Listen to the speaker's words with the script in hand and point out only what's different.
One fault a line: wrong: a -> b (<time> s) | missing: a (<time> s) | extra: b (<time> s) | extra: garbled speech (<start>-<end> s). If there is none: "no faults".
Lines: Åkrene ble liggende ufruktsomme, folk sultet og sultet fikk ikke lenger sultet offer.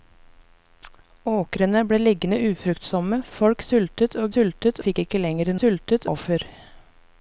no faults